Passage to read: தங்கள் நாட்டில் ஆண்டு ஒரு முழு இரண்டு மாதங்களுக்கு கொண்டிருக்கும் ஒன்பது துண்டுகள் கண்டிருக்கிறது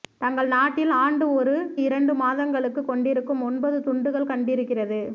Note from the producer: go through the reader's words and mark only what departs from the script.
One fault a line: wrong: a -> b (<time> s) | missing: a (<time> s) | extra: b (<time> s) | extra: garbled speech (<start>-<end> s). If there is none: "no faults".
missing: முழு (1.5 s)